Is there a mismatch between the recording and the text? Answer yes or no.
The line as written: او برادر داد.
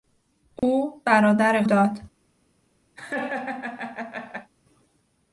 no